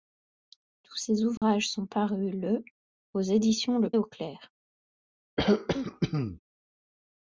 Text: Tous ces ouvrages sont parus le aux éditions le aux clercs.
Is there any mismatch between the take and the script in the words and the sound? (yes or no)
yes